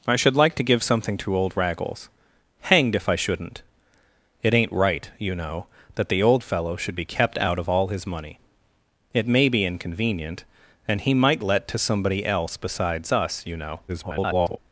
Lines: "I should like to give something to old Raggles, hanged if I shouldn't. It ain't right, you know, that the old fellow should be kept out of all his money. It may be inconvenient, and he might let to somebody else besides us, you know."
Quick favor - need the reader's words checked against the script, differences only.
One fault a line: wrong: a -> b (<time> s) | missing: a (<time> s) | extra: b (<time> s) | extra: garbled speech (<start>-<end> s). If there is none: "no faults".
extra: garbled speech (13.9-14.6 s)